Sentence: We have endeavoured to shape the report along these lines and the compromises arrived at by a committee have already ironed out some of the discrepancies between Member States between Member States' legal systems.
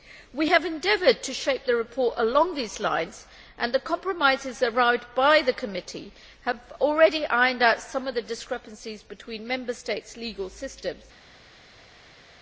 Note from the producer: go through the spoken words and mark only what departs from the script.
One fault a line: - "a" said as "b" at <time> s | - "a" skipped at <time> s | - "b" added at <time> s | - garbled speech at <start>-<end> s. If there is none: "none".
- "a" said as "the" at 5.4 s
- "between Member States" skipped at 10.2 s